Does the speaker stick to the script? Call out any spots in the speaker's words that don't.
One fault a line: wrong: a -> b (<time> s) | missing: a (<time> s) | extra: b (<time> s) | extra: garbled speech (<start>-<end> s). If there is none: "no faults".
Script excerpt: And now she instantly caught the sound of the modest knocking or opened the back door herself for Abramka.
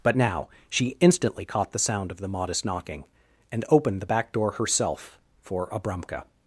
wrong: And -> But (0.0 s)
wrong: or -> and (3.5 s)